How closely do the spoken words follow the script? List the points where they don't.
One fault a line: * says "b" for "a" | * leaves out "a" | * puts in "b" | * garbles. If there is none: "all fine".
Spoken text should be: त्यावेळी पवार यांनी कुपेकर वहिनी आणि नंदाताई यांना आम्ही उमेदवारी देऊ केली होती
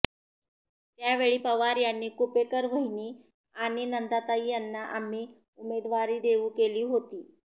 all fine